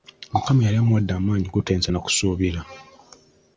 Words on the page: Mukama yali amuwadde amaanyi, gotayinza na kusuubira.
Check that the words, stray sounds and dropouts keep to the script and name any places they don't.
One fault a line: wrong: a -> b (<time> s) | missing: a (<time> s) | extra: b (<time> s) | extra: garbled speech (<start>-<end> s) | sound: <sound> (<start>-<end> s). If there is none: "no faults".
no faults